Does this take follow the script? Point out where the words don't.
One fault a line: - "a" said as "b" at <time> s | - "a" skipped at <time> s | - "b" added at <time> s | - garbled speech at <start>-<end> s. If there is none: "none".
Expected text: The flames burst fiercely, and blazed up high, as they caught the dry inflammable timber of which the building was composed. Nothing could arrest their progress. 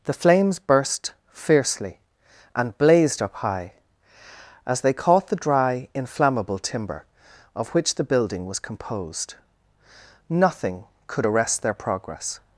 none